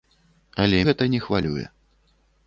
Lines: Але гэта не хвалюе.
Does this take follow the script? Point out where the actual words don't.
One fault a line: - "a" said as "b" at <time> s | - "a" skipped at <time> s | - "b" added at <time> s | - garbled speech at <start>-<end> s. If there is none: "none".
none